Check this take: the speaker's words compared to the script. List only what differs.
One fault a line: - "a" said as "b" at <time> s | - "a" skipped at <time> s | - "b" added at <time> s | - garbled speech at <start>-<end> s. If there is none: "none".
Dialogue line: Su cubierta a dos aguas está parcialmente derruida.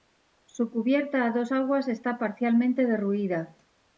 none